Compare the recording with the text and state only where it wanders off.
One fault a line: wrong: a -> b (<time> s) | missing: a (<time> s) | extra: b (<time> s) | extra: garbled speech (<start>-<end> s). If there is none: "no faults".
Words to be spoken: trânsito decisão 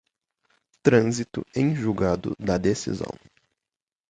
extra: em julgado da (1.6 s)